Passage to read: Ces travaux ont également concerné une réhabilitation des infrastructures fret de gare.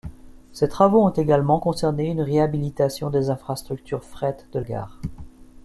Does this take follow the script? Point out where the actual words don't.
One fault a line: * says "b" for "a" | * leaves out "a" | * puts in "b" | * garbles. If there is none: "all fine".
all fine